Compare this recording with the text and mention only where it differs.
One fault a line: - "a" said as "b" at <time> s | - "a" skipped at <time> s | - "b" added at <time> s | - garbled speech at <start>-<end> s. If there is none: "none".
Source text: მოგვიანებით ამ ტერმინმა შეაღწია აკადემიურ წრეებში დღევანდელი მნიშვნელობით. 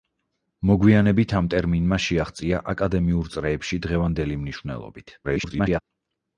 - garbled speech at 5.2-5.8 s